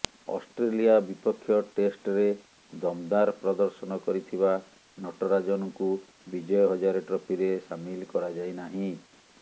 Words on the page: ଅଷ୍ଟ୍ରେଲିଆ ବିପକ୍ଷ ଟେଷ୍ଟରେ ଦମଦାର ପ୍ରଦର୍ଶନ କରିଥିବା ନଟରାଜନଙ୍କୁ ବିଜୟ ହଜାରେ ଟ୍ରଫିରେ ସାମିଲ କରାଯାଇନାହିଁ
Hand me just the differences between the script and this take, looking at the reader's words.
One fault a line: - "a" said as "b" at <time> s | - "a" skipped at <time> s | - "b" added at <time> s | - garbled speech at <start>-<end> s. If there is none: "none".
none